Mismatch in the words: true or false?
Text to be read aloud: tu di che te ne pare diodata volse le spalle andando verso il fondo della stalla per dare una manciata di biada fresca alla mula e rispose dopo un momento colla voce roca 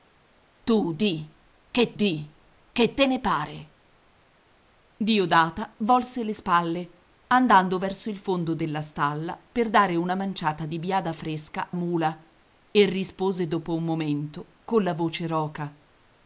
true